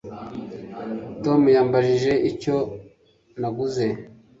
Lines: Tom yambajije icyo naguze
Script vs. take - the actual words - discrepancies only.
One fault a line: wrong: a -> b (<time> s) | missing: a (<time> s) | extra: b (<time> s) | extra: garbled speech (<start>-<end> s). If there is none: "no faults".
no faults